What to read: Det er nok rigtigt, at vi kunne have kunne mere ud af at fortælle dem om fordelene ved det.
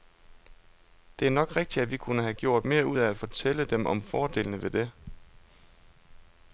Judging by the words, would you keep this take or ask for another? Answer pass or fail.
fail